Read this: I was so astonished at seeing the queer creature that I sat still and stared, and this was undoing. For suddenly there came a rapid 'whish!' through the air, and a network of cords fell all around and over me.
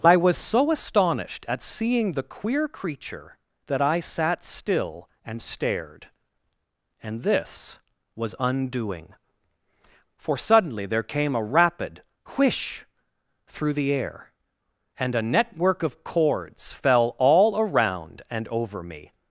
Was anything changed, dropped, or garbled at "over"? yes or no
no